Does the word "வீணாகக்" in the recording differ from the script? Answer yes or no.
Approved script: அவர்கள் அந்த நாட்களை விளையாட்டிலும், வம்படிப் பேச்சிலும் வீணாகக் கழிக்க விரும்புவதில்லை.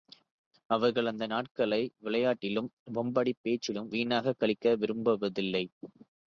no